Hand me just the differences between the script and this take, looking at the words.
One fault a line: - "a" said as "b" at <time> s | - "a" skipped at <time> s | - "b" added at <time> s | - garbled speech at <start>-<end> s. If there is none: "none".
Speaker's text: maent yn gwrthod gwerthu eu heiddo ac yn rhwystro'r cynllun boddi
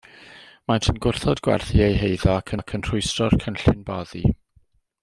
- "ac" added at 2.6 s